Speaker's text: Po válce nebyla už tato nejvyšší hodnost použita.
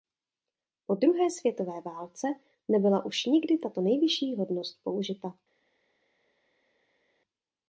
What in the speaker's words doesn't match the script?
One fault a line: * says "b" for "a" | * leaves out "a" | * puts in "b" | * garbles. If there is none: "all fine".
* puts in "druhé světové"
* puts in "nikdy"